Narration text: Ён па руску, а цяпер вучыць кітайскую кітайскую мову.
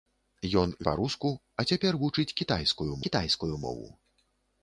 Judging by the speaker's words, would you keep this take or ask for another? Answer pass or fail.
pass